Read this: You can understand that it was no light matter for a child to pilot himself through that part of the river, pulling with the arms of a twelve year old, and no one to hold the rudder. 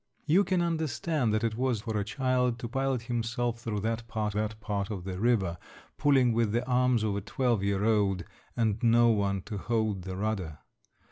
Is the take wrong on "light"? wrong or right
wrong